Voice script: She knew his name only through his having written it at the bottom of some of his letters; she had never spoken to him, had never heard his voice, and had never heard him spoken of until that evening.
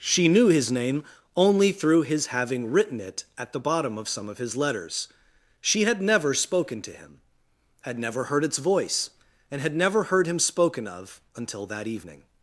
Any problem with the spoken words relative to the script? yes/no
yes